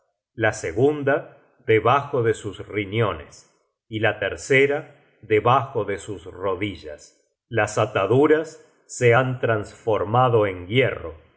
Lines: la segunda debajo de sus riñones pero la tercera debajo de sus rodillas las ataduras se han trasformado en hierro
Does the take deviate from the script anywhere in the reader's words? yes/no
yes